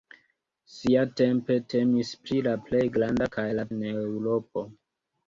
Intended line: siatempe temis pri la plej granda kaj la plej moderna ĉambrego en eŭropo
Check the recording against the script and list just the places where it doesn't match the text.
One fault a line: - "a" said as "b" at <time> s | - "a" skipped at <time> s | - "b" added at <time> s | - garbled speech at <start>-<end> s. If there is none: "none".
- "plej moderna ĉambrego" skipped at 3.7 s